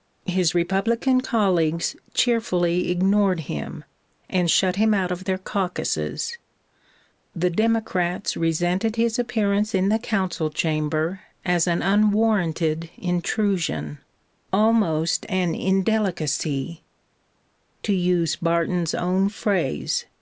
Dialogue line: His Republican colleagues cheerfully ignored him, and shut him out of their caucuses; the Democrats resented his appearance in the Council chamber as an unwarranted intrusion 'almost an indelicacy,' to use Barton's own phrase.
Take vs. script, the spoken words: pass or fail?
pass